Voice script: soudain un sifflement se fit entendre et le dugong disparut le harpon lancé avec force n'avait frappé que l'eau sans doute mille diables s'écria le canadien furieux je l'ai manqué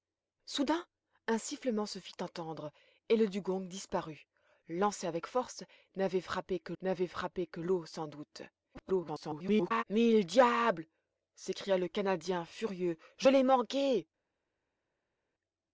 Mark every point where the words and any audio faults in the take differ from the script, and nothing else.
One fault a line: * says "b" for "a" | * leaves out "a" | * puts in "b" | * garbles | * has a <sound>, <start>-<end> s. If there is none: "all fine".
* leaves out "le harpon"
* puts in "n'avait frappé que"
* garbles